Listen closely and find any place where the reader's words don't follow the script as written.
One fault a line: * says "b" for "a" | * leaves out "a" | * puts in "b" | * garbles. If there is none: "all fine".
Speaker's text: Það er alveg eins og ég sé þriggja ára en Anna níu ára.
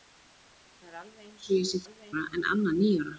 * says "alveg" for "þriggja"